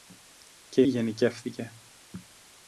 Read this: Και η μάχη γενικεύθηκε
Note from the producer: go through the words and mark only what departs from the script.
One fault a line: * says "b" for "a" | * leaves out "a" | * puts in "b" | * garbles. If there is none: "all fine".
* leaves out "μάχη"